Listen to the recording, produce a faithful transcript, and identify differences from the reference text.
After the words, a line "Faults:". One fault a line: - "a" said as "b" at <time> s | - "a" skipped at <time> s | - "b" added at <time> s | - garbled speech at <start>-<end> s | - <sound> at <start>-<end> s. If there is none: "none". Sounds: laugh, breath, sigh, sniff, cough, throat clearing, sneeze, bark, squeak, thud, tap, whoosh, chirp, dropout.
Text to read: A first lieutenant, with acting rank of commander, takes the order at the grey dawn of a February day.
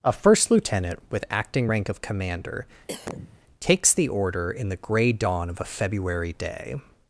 A first lieutenant, with acting rank of commander, takes the order in the grey dawn of a February day.
Faults:
- cough at 2.9-3.4 s
- "at" said as "in" at 4.5 s